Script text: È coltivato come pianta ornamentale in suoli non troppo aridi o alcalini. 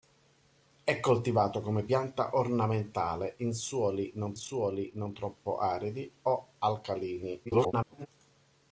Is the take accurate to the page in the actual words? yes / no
no